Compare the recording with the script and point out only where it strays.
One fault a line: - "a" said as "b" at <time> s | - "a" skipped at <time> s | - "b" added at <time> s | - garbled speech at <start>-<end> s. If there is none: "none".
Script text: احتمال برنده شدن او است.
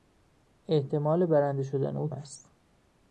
none